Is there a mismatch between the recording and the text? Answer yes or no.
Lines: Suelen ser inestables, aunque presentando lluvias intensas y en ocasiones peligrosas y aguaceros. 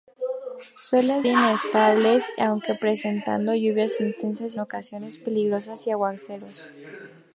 yes